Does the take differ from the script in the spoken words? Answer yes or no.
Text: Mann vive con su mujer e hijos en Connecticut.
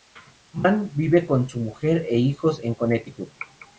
no